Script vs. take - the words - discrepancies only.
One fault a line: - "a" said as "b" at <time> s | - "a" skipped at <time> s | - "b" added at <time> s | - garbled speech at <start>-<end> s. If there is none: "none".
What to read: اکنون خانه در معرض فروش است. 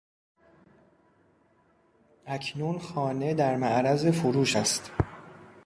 none